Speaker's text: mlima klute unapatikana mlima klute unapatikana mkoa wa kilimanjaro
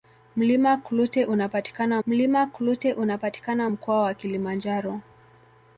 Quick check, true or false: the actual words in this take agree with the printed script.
true